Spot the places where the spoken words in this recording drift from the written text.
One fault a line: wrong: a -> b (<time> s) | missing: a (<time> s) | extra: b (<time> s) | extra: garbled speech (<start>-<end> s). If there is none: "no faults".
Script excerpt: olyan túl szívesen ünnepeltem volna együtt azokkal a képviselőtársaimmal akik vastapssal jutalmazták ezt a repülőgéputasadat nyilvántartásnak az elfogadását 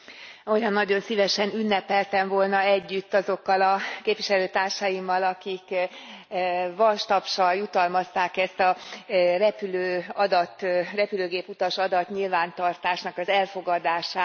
wrong: túl -> nagyon (0.7 s)